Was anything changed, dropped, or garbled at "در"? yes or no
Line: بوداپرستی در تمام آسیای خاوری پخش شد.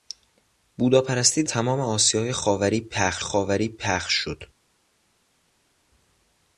yes